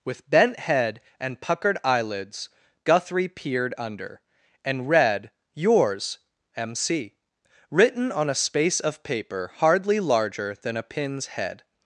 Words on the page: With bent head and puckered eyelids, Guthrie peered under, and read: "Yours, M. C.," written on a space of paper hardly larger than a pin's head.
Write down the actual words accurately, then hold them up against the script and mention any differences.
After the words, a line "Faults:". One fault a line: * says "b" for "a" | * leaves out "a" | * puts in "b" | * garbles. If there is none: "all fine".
With bent head and puckered eyelids, Guthrie peered under, and read: "Yours, M. C.," written on a space of paper hardly larger than a pin's head.
Faults:
all fine